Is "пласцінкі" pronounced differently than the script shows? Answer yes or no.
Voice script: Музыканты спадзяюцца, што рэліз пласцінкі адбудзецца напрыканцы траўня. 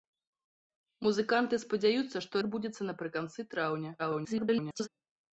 yes